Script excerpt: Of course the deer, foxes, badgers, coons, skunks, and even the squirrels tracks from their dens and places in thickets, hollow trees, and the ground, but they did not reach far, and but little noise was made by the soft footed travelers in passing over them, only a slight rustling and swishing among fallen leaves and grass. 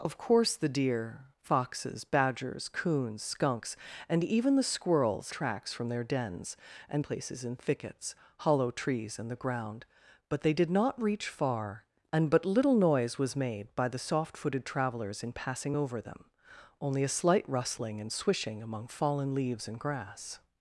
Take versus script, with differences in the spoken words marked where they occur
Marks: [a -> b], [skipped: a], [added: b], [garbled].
Of course the deer, foxes, badgers, coons, skunks, and even the squirrels tracks from their dens and places in thickets, hollow trees, and the ground, but they did not reach far, and but little noise was made by the soft footed travelers in passing over them, only a slight rustling and swishing among fallen leaves and grass.